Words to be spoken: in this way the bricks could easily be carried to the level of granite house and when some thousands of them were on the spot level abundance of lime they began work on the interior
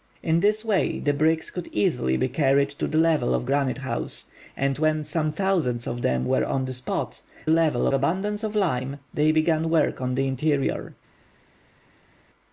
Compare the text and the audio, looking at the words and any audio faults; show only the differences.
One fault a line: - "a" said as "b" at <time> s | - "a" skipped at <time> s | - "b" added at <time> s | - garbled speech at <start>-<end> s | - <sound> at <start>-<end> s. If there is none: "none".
none